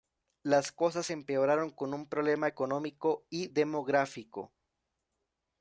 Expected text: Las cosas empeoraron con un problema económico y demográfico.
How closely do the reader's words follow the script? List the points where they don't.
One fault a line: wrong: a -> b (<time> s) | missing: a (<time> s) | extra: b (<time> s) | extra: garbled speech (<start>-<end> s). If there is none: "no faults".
no faults